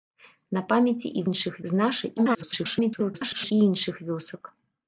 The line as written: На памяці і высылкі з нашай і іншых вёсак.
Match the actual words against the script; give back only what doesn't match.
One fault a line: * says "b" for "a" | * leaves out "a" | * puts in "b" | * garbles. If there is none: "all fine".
* says "іншых" for "высылкі"
* garbles